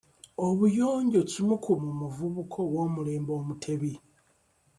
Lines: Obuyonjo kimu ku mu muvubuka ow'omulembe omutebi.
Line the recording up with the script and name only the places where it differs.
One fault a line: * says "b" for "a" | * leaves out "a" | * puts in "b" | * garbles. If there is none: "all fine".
all fine